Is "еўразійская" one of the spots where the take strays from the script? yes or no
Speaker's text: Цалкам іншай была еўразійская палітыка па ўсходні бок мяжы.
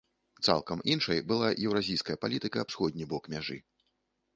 no